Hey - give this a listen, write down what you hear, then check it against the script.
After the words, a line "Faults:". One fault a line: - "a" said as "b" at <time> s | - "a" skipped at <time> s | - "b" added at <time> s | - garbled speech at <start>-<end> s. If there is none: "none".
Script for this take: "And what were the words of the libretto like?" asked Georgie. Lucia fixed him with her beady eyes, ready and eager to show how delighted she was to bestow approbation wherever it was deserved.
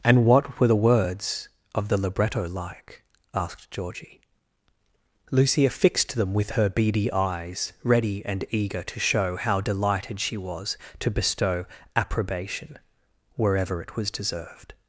"And what were the words of the libretto like?" asked Georgie. Lucia fixed them with her beady eyes, ready and eager to show how delighted she was to bestow approbation wherever it was deserved.
Faults:
- "him" said as "them" at 6.2 s